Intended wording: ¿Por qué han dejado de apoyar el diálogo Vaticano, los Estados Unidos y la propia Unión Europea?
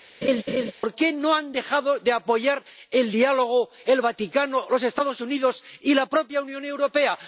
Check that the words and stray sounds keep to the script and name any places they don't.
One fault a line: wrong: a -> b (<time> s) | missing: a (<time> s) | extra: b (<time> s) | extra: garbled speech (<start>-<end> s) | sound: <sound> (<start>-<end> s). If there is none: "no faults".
sound: laugh (0.2-0.7 s)
extra: no (1.1 s)
extra: el (3.9 s)